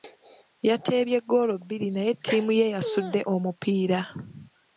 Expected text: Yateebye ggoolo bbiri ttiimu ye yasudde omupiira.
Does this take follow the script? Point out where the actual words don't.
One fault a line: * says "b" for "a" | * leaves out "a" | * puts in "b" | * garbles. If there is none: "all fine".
* puts in "naye"